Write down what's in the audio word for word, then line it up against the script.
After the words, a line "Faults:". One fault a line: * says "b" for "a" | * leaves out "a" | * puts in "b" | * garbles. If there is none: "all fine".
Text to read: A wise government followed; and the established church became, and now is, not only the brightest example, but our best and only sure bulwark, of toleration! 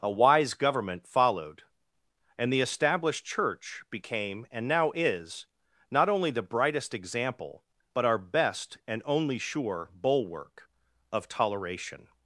A wise government followed; and the established church became, and now is, not only the brightest example, but our best and only sure bulwark, of toleration!
Faults:
all fine